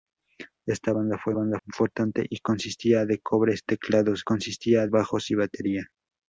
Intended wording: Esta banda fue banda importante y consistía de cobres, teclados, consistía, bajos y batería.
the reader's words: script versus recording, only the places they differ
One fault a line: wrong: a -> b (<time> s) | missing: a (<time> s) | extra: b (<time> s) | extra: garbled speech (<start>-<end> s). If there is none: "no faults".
no faults